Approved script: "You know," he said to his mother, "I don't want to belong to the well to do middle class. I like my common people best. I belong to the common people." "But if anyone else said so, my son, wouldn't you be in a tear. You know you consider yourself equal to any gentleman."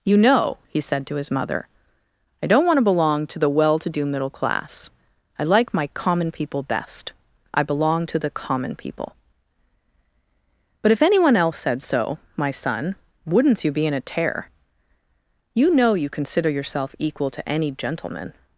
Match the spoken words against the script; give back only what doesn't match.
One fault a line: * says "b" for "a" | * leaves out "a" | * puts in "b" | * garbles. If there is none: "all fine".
all fine